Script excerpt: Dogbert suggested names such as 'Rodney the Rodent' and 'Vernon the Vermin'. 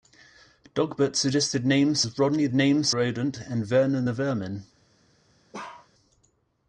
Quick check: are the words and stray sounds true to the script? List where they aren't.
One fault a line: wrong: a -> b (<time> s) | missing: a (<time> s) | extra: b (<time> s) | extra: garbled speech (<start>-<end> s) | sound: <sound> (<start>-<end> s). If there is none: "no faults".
missing: such (2.0 s)
wrong: the -> names (2.5 s)
sound: bark (5.5-5.9 s)